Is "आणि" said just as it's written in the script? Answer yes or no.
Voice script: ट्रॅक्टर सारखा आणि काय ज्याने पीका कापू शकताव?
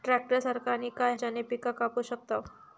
yes